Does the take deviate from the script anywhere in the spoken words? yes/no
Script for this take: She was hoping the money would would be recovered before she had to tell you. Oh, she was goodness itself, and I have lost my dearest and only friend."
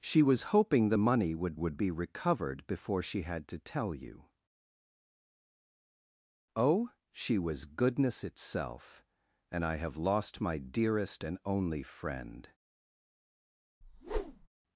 no